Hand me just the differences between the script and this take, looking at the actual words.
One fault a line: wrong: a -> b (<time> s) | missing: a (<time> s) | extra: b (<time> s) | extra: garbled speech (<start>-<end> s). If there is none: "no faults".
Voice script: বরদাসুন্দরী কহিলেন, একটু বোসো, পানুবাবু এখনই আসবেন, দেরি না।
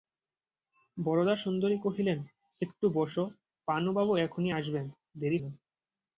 no faults